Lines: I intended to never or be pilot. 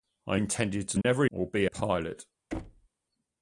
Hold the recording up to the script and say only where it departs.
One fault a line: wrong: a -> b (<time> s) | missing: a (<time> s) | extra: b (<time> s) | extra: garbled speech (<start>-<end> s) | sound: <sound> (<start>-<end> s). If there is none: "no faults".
sound: dropout (1.0-1.0 s)
sound: thud (2.5-2.9 s)